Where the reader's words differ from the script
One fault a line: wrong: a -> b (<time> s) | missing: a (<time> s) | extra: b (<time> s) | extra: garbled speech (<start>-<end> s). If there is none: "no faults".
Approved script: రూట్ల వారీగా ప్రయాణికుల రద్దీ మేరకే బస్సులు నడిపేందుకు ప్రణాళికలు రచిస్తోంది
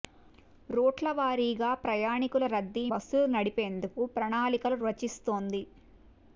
missing: మేరకే (2.9 s)